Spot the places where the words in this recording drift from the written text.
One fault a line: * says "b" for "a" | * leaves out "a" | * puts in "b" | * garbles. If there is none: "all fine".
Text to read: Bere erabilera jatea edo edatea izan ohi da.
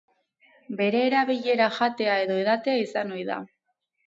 all fine